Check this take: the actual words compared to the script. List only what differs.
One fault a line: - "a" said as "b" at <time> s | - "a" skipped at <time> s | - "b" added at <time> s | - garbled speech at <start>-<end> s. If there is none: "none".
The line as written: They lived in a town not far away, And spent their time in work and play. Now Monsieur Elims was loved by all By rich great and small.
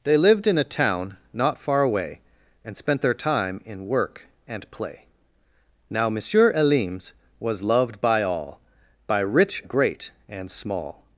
none